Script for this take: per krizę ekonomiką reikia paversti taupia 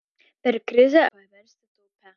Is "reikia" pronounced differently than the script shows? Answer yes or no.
yes